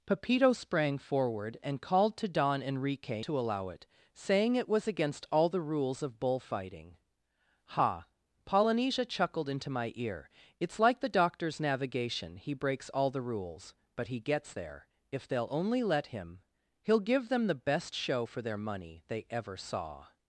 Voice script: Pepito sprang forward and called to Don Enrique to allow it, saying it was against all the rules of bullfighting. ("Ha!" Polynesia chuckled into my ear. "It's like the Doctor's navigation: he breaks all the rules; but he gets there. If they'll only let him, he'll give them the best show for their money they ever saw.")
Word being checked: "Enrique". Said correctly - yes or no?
yes